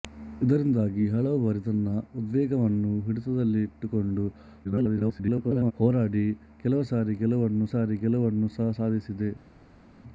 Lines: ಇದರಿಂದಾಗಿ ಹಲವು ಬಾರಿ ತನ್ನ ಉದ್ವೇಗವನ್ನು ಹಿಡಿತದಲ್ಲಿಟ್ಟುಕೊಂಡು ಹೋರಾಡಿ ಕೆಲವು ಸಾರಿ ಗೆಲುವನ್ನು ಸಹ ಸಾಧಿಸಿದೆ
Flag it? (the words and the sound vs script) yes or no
yes